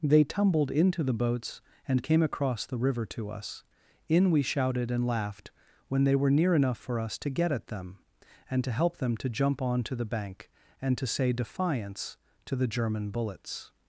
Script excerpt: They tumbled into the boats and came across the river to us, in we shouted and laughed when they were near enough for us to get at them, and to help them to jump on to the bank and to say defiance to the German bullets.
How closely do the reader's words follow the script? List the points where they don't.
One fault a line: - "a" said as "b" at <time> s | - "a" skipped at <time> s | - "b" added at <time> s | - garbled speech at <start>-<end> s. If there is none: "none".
none